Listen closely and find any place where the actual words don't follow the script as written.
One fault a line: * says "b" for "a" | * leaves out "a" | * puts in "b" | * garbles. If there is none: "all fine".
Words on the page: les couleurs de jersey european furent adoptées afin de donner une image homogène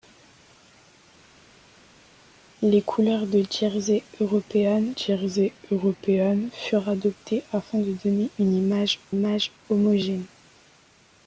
* puts in "jersey european"
* puts in "image"